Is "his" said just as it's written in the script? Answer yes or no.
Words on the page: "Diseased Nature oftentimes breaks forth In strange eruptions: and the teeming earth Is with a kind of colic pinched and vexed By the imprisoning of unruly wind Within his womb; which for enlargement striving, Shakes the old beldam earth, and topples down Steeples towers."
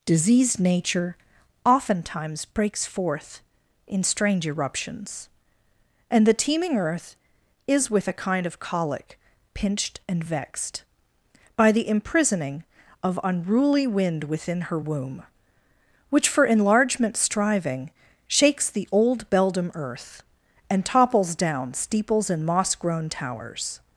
no